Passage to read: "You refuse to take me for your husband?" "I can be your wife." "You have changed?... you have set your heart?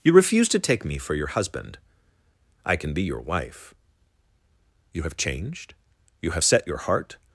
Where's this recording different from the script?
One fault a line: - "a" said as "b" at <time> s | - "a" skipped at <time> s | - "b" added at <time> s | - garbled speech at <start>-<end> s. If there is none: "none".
none